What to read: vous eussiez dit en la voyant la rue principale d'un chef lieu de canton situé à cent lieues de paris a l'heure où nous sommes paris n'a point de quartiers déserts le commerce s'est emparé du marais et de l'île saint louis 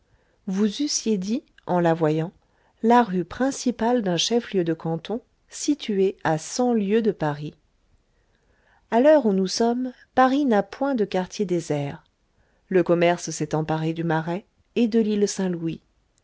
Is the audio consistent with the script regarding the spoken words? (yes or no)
yes